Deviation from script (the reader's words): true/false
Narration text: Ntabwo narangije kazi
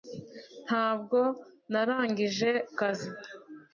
false